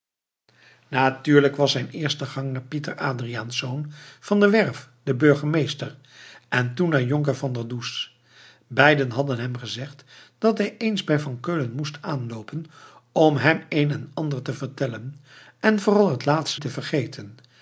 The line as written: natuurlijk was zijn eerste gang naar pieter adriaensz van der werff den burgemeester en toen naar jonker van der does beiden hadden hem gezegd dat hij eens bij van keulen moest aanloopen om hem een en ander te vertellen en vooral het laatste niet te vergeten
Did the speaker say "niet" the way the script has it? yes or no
no